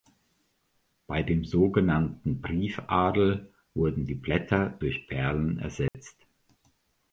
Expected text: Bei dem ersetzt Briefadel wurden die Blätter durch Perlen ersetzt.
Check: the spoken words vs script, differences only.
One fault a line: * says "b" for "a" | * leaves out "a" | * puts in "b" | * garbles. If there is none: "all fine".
* says "sogenannten" for "ersetzt"